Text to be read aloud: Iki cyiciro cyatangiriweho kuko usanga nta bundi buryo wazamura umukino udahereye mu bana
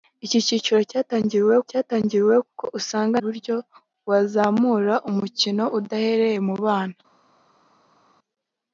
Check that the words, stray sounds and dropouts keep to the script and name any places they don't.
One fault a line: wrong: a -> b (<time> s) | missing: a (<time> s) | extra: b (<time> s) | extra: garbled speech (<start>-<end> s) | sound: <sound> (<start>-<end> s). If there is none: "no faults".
extra: cyatangiriweho (1.7 s)
missing: nta bundi (3.2 s)